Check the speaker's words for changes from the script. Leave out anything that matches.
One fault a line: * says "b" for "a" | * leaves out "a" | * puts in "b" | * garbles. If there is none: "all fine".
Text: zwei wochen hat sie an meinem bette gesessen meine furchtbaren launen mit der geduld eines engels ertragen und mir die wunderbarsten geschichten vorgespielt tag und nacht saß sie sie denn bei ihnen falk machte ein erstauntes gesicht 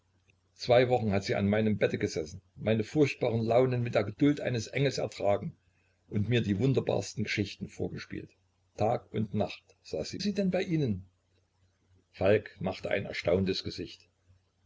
all fine